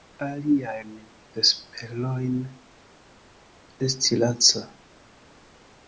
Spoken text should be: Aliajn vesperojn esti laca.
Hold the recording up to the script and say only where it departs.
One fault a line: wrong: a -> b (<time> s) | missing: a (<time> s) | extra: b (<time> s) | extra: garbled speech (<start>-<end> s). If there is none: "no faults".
no faults